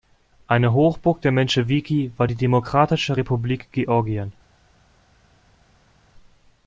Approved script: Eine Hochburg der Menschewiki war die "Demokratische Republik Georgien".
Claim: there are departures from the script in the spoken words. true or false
false